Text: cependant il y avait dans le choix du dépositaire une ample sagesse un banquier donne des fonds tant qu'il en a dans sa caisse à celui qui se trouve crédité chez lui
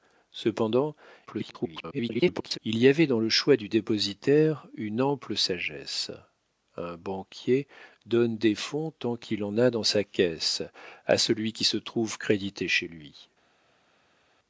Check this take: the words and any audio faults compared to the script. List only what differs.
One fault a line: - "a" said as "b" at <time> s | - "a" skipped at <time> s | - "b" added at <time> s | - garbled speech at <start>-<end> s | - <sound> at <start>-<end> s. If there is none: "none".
- garbled speech at 1.3-2.6 s